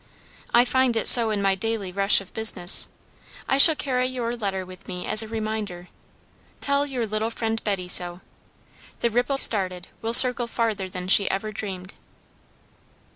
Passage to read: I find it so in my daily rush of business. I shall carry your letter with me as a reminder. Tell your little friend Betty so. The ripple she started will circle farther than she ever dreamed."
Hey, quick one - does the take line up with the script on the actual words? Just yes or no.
no